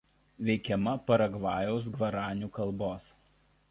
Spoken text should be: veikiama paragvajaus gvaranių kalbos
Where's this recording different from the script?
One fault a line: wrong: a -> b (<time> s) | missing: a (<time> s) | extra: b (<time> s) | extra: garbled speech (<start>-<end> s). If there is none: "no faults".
no faults